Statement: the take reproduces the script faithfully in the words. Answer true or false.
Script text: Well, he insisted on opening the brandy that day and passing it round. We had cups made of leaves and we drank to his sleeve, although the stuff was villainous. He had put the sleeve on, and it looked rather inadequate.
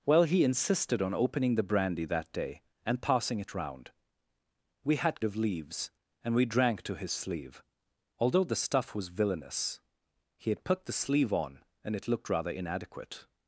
false